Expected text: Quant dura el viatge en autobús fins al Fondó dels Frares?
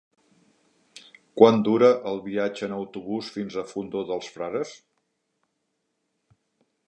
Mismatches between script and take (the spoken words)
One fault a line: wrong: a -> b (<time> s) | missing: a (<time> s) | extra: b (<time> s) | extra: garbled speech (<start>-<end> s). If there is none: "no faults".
no faults